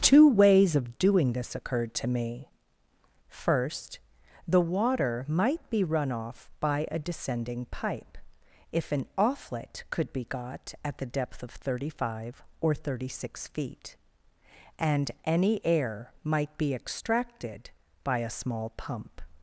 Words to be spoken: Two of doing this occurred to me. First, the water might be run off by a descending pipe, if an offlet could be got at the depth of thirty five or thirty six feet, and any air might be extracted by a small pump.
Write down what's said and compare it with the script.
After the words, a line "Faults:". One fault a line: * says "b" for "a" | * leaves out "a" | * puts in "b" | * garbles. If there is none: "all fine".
Two ways of doing this occurred to me. First, the water might be run off by a descending pipe, if an offlet could be got at the depth of thirty five or thirty six feet, and any air might be extracted by a small pump.
Faults:
* puts in "ways"